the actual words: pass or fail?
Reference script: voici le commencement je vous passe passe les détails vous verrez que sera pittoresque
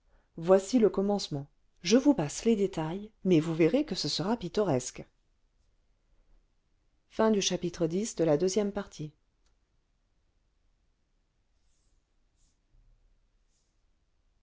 fail